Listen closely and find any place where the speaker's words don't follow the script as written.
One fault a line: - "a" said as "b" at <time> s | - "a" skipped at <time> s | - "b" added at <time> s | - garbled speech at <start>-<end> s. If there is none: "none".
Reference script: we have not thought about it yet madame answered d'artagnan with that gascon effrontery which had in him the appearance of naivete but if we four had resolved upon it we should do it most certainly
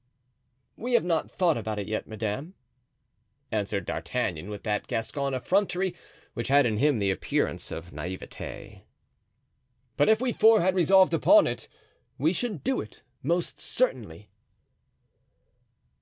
none